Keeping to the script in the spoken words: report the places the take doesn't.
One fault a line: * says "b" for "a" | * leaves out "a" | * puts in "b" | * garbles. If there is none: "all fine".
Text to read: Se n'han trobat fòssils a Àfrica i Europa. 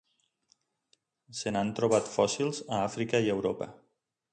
all fine